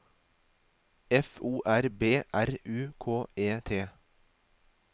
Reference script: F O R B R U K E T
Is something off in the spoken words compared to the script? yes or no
no